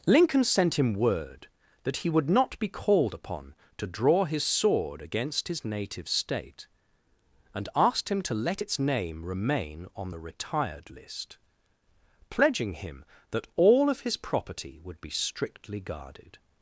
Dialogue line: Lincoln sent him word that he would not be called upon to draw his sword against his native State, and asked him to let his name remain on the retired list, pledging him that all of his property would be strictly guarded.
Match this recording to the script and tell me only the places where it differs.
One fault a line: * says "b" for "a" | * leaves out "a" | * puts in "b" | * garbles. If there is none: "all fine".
* says "its" for "his"